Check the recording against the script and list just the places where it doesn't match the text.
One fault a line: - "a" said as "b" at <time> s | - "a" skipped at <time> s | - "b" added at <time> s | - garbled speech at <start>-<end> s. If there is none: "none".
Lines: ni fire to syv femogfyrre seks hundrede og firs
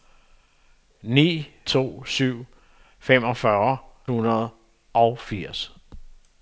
- "fire" skipped at 1.5 s
- "seks" skipped at 3.8 s